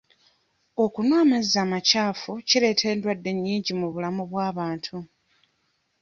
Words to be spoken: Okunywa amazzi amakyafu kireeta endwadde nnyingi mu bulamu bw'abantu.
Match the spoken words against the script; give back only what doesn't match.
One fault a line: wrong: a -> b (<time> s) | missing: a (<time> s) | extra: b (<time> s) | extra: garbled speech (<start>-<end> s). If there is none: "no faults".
no faults